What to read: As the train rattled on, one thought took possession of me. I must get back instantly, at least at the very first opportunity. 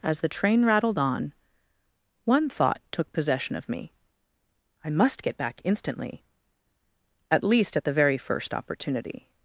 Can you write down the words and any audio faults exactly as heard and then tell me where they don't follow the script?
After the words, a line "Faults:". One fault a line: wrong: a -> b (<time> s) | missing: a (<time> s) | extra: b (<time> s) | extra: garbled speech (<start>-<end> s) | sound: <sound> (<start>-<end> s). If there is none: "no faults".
As the train rattled on, one thought took possession of me. I must get back instantly, at least at the very first opportunity.
Faults:
no faults